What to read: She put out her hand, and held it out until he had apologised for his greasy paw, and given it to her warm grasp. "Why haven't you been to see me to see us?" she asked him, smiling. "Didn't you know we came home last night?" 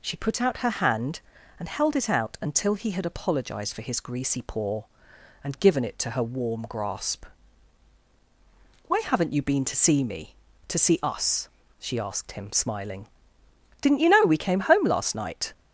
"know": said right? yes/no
yes